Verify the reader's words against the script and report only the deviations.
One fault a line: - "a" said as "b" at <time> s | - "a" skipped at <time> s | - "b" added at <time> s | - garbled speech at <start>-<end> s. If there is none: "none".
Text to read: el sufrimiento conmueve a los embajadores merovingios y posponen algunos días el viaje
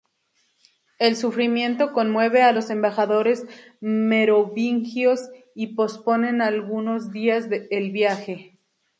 none